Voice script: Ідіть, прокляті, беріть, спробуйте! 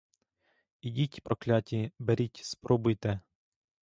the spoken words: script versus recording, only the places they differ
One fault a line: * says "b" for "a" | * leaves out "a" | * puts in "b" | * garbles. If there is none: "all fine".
all fine